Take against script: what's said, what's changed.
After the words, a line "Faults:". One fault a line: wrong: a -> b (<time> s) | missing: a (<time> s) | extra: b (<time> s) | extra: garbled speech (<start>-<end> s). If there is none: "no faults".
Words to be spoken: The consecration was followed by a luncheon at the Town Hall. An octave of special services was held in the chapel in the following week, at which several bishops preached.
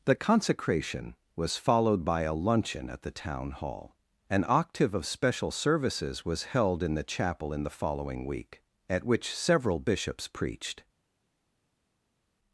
The consecration was followed by a luncheon at the Town Hall. An octave of special services was held in the chapel in the following week, at which several bishops preached.
Faults:
no faults